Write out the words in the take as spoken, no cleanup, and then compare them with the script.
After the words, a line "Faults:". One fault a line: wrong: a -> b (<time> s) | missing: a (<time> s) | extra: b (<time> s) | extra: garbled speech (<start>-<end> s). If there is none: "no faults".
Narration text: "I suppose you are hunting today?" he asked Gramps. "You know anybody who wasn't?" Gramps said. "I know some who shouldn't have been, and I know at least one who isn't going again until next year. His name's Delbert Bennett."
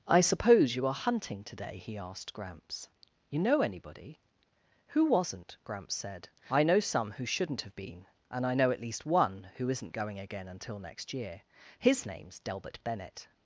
"I suppose you are hunting today?" he asked Gramps. "You know anybody who wasn't?" Gramps said. "I know some who shouldn't have been, and I know at least one who isn't going again until next year. His name's Delbert Bennett."
Faults:
no faults